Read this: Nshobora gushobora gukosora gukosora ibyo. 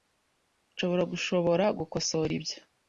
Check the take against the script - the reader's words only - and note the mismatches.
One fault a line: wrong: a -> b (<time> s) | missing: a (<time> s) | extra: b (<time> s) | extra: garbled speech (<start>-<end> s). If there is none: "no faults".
missing: gukosora (2.3 s)